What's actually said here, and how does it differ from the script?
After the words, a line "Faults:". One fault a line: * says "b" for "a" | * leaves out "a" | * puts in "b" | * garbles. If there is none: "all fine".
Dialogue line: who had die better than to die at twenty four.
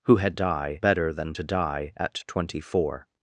who had die better than to die at twenty four.
Faults:
all fine